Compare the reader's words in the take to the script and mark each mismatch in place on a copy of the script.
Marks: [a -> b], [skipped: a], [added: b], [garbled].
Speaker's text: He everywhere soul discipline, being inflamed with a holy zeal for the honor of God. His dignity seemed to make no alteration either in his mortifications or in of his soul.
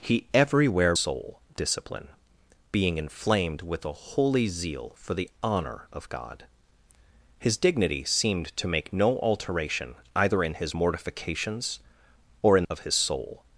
He everywhere soul discipline, being inflamed with a holy zeal for the honor of God. His dignity seemed to make no alteration either in his mortifications or in of his soul.